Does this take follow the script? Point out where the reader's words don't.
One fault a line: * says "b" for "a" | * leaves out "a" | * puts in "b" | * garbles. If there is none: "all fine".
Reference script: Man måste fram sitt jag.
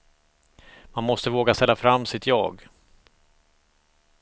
* puts in "våga ställa"